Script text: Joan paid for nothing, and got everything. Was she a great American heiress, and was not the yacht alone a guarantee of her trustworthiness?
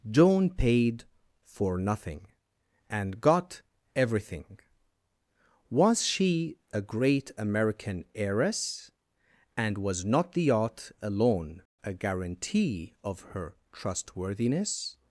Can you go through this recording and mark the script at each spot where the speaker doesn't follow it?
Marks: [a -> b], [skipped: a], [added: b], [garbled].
Joan paid for nothing, and got everything. Was she a great American heiress, and was not the yacht alone a guarantee of her trustworthiness?